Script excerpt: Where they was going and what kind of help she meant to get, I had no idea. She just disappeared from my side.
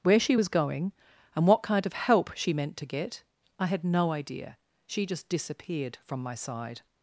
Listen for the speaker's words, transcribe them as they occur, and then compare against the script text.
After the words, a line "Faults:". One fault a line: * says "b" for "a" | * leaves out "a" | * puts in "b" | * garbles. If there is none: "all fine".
Where she was going and what kind of help she meant to get, I had no idea. She just disappeared from my side.
Faults:
* says "she" for "they"